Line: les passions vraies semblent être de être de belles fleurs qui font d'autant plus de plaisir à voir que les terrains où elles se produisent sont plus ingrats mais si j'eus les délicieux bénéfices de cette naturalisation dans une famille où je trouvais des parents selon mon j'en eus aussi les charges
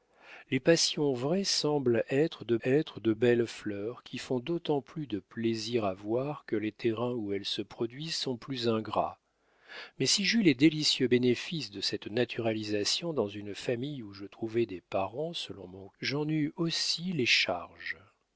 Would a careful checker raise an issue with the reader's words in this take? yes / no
no